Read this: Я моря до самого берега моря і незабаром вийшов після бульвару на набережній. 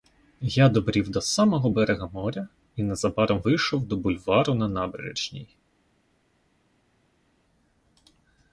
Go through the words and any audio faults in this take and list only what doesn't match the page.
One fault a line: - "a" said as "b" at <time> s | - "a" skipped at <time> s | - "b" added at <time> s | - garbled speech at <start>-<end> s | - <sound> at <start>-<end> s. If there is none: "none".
- "моря" said as "добрів" at 0.7 s
- "після" said as "до" at 3.9 s